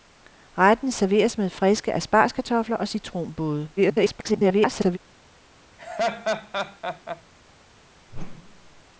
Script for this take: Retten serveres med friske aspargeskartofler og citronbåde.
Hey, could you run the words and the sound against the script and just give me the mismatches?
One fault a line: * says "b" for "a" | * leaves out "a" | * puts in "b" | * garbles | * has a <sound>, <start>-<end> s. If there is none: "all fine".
* garbles
* has a laugh, 5.8-7.2 s
* has a whoosh, 8.1-8.8 s